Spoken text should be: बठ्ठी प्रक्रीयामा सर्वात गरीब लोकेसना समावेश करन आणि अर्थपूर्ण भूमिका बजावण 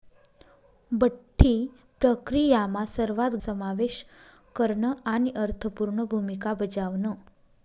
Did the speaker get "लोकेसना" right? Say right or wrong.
wrong